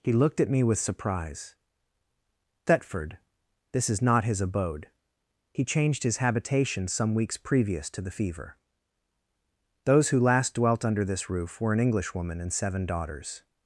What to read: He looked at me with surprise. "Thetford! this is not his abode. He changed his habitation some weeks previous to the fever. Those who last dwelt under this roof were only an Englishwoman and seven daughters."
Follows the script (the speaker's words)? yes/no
no